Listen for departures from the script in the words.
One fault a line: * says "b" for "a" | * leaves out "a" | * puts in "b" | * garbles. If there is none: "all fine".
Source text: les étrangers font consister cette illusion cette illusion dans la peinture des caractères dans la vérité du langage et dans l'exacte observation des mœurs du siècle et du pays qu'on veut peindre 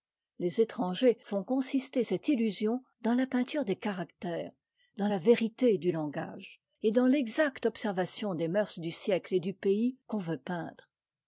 * leaves out "cette illusion"